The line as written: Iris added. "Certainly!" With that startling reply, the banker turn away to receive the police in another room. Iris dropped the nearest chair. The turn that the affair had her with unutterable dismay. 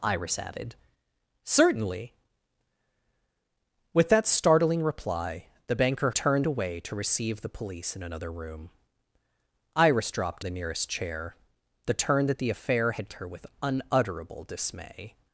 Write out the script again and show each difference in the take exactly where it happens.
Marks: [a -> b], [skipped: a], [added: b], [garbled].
Iris added. "Certainly!" With that startling reply, the banker turn away to receive the police in another room. Iris dropped the nearest chair. The turn that the affair had her with unutterable dismay.